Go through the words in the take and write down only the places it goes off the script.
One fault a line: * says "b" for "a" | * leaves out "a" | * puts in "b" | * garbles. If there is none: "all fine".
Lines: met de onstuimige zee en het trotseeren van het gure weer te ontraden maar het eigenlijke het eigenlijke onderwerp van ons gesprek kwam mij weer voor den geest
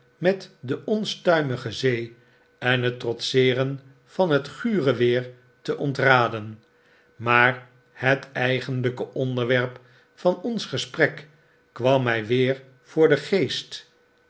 * leaves out "het eigenlijke"